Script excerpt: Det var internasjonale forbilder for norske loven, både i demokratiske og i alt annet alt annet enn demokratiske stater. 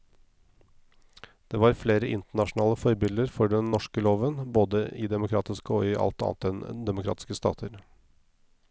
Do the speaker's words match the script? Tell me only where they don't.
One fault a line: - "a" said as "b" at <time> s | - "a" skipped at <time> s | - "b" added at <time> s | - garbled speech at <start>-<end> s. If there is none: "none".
- "flere" added at 1.8 s
- "den" added at 3.5 s
- "alt annet" skipped at 6.5 s